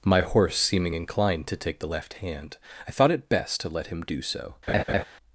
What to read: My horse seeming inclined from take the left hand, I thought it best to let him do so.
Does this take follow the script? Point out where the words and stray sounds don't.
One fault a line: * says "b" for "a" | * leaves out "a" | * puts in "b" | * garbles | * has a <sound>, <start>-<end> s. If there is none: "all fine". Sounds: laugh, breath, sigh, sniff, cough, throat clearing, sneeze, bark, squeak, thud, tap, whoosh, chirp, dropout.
* says "to" for "from"
* has a laugh, 4.7-5.0 s